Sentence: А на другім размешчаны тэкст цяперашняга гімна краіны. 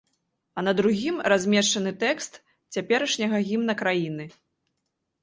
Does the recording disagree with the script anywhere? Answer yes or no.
no